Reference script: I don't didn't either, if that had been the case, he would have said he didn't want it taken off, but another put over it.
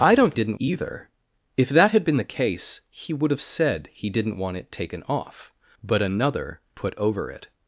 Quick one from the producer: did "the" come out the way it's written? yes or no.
yes